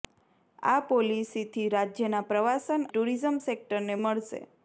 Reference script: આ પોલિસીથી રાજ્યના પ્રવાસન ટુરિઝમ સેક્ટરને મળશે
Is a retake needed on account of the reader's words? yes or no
no